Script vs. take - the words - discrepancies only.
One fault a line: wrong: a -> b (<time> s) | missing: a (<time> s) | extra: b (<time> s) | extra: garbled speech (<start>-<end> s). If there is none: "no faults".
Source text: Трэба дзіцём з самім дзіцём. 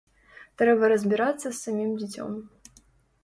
wrong: дзіцём -> разбірацца (0.9 s)